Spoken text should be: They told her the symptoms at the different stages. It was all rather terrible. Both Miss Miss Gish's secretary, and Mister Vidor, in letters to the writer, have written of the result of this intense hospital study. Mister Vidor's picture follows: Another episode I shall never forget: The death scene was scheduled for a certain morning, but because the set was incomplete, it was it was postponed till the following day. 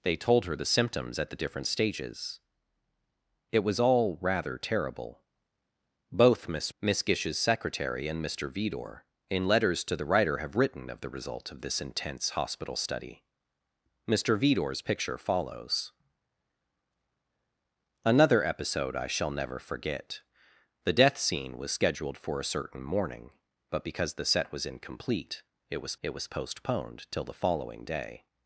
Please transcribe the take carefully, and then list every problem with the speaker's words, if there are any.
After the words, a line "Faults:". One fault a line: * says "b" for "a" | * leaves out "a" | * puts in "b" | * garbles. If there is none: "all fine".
They told her the symptoms at the different stages. It was all rather terrible. Both Miss Miss Gish's secretary, and Mister Vidor, in letters to the writer, have written of the result of this intense hospital study. Mister Vidor's picture follows: Another episode I shall never forget: The death scene was scheduled for a certain morning, but because the set was incomplete, it was it was postponed till the following day.
Faults:
all fine